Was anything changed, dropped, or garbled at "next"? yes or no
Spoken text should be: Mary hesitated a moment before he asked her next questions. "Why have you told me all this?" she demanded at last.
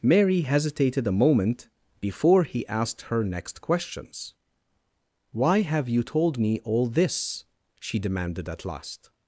no